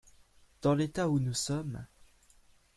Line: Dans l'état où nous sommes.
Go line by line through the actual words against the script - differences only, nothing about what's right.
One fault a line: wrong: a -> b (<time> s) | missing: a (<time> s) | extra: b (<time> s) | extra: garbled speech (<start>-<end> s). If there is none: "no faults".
no faults